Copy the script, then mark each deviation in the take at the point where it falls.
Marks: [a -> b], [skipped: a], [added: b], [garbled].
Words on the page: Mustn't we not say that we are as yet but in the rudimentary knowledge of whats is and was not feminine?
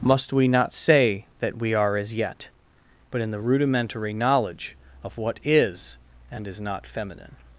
[Mustn't -> Must] we not say that we are as yet but in the rudimentary knowledge of [whats -> what] is and [was -> is] not feminine?